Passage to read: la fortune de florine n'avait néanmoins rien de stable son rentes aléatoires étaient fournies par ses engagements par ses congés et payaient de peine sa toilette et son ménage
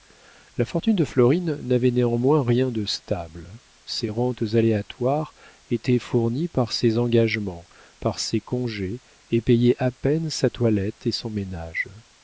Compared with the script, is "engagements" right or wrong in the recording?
right